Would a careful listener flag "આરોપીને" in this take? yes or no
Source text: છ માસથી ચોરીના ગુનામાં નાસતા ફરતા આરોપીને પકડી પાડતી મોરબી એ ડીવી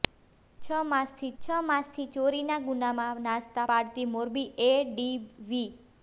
yes